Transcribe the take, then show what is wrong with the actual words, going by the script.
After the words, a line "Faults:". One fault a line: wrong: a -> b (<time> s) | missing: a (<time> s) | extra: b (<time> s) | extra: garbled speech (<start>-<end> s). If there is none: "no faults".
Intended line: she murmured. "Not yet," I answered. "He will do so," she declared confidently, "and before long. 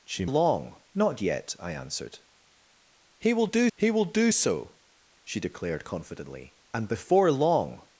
she long. "Not yet," I answered. "He will do he will do so," she declared confidently, "and before long.
Faults:
wrong: murmured -> long (0.2 s)
extra: he will do (3.8 s)